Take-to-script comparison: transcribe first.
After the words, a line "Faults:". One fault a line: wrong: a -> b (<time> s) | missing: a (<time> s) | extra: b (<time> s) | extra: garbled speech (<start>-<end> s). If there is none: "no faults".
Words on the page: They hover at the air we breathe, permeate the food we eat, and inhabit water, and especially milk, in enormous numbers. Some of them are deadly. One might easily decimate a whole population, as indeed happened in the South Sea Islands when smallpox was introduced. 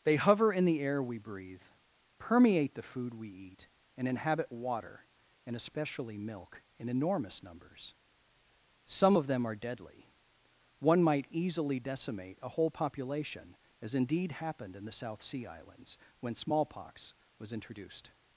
They hover in the air we breathe, permeate the food we eat, and inhabit water, and especially milk, in enormous numbers. Some of them are deadly. One might easily decimate a whole population, as indeed happened in the South Sea Islands when smallpox was introduced.
Faults:
wrong: at -> in (0.5 s)